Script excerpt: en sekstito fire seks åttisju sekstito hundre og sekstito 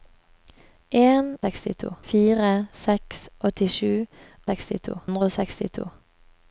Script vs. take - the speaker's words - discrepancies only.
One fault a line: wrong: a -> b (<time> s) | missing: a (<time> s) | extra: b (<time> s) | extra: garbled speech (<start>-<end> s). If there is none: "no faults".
no faults